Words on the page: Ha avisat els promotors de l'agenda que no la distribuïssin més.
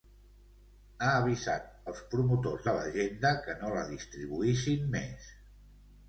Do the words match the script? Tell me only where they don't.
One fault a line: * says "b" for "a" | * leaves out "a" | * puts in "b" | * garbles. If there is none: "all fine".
all fine